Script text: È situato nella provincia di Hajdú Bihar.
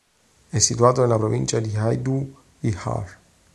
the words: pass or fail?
pass